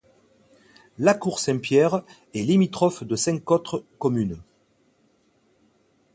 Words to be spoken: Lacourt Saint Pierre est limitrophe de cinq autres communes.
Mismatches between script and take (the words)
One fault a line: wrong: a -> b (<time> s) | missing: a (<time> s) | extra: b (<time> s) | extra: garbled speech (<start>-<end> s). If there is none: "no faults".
no faults